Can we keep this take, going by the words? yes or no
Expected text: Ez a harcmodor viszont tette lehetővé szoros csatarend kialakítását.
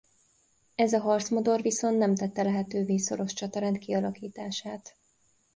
no